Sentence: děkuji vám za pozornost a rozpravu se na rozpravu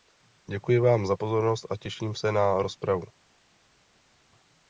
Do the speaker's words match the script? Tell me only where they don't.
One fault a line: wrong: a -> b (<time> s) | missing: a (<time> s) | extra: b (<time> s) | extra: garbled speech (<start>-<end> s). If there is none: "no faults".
wrong: rozpravu -> těším (1.8 s)